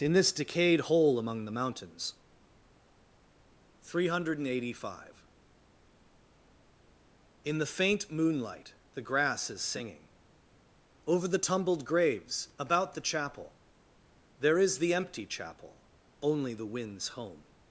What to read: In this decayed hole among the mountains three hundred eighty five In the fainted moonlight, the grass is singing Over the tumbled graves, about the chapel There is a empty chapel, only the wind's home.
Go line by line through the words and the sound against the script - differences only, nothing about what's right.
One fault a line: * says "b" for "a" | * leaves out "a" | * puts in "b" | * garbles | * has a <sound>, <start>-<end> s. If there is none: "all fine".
* says "faint" for "fainted"
* says "the" for "a"